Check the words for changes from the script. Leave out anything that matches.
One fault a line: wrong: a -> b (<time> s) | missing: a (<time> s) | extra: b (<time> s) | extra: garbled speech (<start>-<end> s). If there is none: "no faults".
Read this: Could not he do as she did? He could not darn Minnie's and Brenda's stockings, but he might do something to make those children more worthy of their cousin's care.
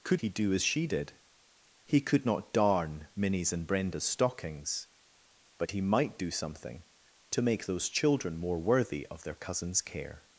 missing: not (0.2 s)